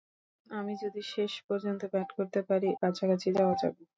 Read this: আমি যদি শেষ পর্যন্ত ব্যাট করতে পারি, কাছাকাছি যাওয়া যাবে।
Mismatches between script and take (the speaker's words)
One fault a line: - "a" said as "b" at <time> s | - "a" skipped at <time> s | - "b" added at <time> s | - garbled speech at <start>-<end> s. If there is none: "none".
none